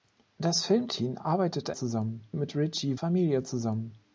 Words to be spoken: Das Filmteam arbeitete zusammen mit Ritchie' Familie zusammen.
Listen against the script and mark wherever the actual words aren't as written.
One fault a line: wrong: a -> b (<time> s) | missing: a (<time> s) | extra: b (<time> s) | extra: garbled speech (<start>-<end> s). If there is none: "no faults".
no faults